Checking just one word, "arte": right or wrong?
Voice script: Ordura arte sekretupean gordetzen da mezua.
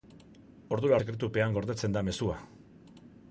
wrong